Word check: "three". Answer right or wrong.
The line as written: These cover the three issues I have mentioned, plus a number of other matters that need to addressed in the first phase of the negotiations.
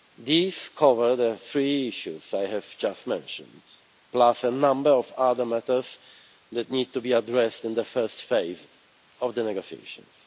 right